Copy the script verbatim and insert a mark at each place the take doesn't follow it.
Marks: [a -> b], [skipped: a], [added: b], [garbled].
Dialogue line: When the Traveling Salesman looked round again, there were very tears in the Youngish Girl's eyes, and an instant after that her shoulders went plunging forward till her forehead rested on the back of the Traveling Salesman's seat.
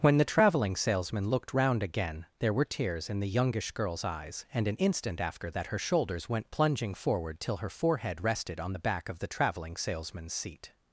When the Traveling Salesman looked round again, there were [skipped: very] tears in the Youngish Girl's eyes, and an instant after that her shoulders went plunging forward till her forehead rested on the back of the Traveling Salesman's seat.